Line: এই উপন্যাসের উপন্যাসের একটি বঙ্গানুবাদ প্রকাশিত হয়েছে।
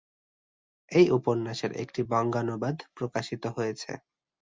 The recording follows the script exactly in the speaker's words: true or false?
false